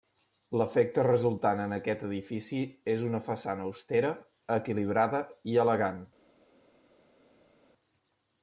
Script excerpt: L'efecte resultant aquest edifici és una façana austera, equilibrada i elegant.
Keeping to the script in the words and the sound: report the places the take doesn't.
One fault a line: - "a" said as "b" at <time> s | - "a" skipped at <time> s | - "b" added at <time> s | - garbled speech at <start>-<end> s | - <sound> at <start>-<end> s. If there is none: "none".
- "en" added at 1.6 s